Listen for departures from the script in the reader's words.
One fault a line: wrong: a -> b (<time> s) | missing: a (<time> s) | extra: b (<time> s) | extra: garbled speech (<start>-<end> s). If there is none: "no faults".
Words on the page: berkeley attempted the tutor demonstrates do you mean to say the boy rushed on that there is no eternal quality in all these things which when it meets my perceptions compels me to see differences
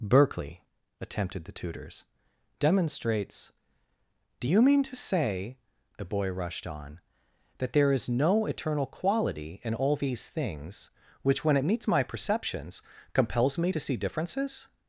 wrong: tutor -> tutors (1.5 s)